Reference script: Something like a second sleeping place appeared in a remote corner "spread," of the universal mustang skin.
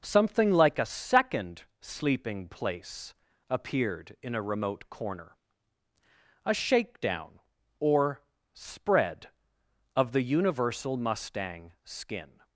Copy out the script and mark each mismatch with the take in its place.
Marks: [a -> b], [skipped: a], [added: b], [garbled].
Something like a second sleeping place appeared in a remote corner [added: a shakedown or] "spread," of the universal mustang skin.